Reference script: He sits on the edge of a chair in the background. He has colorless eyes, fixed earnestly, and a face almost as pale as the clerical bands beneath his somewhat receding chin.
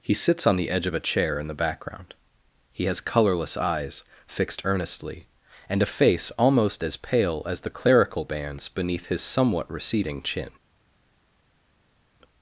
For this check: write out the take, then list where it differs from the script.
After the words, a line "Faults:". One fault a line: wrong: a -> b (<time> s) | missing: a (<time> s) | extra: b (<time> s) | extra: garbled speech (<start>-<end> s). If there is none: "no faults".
He sits on the edge of a chair in the background. He has colorless eyes, fixed earnestly, and a face almost as pale as the clerical bands beneath his somewhat receding chin.
Faults:
no faults